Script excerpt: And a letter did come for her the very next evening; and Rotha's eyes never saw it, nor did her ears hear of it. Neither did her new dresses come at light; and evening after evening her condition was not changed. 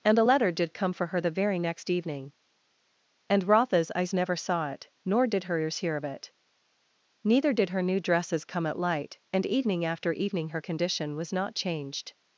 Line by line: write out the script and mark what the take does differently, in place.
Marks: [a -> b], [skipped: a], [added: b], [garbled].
And a letter did come for her the very next evening; and Rotha's eyes never saw it, nor did her ears hear of it. Neither did her new dresses come at light; and evening after evening her condition was not changed.